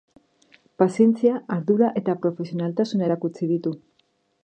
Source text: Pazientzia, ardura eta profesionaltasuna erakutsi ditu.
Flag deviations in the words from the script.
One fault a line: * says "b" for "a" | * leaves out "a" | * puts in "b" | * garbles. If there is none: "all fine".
all fine